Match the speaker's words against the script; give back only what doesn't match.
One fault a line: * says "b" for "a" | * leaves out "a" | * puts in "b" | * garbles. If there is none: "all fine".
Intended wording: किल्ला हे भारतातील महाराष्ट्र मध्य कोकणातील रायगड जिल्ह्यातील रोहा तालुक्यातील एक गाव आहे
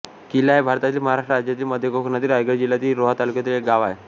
* puts in "राज्यातील"